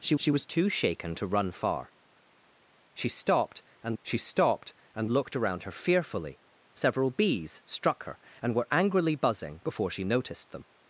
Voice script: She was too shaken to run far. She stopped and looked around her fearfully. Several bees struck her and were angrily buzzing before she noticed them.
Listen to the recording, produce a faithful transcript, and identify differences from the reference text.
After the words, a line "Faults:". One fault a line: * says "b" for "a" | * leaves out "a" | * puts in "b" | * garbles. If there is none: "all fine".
She she was too shaken to run far. She stopped and she stopped and looked around her fearfully. Several bees struck her and were angrily buzzing before she noticed them.
Faults:
* puts in "she"
* puts in "she stopped and"